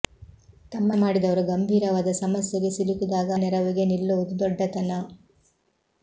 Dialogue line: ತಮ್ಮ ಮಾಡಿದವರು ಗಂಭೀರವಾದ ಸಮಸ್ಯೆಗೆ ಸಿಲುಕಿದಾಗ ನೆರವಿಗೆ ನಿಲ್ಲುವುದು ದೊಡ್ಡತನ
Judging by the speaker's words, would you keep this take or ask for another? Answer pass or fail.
pass